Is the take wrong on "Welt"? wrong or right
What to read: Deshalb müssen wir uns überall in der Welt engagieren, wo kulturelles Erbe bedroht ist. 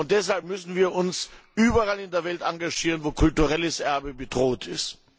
right